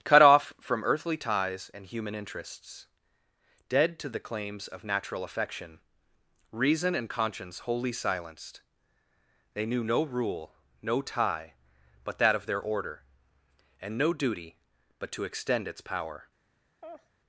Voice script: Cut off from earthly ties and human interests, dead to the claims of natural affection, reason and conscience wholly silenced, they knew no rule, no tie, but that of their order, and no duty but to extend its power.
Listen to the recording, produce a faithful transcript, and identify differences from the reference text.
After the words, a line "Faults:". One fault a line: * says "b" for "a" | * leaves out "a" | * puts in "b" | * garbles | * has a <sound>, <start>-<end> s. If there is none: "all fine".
Cut off from earthly ties and human interests, dead to the claims of natural affection, reason and conscience wholly silenced, they knew no rule, no tie, but that of their order, and no duty but to extend its power.
Faults:
* has a laugh, 16.8-17.1 s